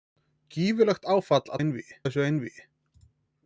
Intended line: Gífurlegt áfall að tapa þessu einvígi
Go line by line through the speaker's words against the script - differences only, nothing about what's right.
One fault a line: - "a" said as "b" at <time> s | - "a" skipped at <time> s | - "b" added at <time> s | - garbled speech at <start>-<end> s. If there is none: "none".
- "tapa" said as "einvígi" at 1.6 s